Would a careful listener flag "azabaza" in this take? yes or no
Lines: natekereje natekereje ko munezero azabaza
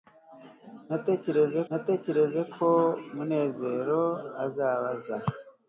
no